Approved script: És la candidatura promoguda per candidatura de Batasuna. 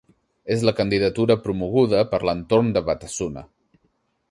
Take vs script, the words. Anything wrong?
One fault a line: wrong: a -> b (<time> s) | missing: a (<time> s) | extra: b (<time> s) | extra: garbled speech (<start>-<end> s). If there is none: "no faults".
wrong: candidatura -> l'entorn (2.3 s)